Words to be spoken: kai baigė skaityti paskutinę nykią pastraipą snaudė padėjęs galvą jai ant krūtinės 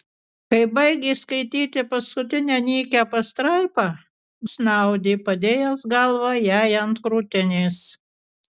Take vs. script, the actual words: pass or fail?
pass